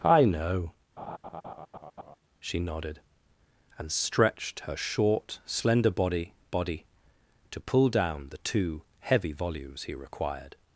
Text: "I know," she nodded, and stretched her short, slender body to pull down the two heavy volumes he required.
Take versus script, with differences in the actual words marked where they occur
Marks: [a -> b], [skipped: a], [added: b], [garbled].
"I know," she nodded, and stretched her short, slender body [added: body] to pull down the two heavy volumes he required.